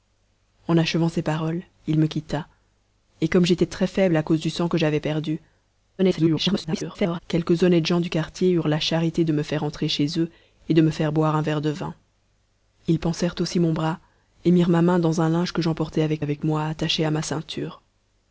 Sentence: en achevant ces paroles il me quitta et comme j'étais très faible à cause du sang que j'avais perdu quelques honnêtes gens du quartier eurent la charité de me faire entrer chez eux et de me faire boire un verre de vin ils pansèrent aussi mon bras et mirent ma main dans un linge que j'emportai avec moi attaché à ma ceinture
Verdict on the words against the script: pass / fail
fail